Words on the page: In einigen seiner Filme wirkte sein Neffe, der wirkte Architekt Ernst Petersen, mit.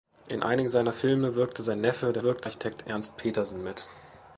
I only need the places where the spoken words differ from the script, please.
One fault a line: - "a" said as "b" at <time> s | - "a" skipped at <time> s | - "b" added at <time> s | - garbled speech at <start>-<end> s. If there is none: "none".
none